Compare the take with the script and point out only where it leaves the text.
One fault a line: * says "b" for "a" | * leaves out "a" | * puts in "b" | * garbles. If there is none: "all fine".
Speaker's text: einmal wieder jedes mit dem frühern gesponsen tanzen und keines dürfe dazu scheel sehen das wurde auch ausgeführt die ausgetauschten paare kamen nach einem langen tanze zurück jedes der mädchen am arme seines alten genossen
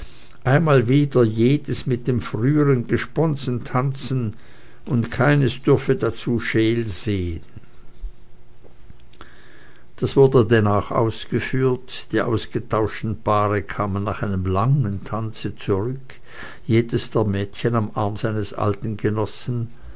* puts in "denn"